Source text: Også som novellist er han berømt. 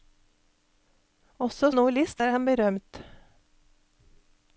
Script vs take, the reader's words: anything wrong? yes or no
yes